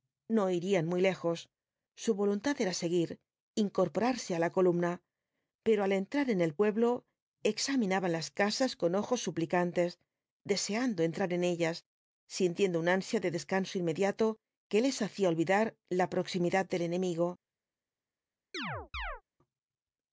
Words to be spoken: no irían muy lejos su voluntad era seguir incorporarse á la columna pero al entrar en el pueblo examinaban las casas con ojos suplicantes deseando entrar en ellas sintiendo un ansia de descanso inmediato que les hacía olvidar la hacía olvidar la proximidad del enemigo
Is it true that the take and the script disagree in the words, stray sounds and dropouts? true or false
true